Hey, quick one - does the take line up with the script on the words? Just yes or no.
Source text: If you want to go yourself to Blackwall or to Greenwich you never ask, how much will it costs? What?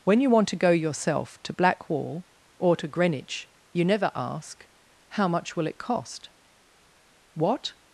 no